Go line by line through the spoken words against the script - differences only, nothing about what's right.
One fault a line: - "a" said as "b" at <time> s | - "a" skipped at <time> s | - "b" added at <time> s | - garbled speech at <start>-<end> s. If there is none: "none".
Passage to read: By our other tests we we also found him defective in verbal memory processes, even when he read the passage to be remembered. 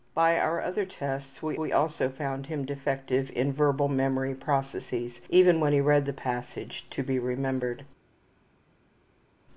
none